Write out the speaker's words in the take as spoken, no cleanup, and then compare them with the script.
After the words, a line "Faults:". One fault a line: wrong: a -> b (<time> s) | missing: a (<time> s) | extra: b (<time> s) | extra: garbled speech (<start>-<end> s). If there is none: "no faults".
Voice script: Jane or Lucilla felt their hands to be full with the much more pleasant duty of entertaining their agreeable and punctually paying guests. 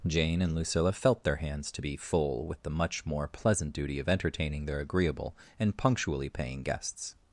Jane and Lucilla felt their hands to be full with the much more pleasant duty of entertaining their agreeable and punctually paying guests.
Faults:
wrong: or -> and (0.4 s)